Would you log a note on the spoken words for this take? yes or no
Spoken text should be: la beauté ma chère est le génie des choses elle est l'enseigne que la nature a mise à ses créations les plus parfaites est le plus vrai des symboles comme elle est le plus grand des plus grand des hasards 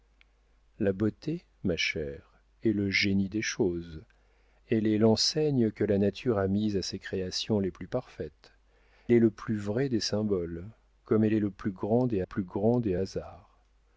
no